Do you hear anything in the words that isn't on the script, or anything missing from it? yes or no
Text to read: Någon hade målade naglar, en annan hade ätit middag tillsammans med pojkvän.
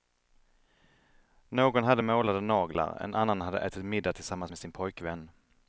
yes